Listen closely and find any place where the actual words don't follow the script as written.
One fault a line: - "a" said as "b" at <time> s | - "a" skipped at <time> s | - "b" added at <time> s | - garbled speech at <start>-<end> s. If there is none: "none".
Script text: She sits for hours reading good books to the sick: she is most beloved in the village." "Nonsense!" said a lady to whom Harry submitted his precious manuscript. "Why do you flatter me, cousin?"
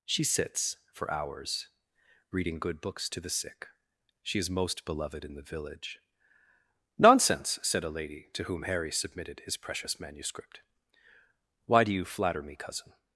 none